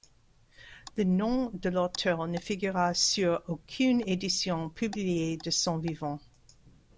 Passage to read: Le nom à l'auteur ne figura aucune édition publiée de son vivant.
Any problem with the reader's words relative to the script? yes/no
yes